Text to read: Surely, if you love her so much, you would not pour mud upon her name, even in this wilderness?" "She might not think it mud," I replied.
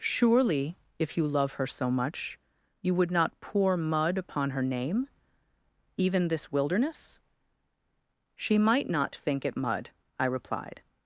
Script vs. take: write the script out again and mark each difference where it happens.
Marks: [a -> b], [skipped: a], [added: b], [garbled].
Surely, if you love her so much, you would not pour mud upon her name, even [skipped: in] this wilderness?" "She might not think it mud," I replied.